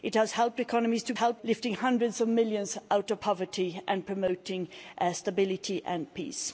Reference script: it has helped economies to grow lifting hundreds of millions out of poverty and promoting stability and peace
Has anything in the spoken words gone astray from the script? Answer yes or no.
yes